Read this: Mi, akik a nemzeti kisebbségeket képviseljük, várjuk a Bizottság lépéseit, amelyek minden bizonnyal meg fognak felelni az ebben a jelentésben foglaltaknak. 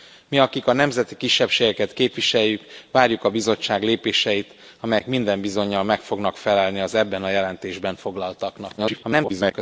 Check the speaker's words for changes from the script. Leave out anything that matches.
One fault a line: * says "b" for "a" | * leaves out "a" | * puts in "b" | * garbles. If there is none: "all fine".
* garbles